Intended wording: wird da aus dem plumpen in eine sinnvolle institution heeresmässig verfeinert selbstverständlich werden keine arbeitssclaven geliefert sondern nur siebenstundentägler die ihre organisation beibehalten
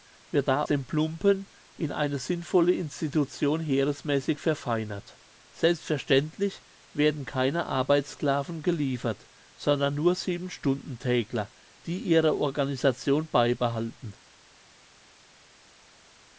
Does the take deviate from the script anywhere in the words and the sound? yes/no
yes